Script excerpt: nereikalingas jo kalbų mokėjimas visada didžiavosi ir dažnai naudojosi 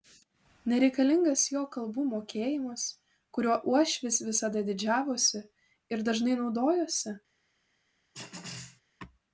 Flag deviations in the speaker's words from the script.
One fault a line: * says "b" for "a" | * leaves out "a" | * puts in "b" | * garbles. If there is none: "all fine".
* puts in "kuriuo uošvis"